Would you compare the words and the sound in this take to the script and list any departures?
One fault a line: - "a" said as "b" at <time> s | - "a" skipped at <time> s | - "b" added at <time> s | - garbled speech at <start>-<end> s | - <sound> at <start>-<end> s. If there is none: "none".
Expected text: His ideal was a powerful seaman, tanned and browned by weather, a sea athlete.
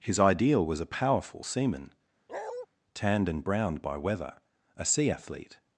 - bark at 2.3-2.7 s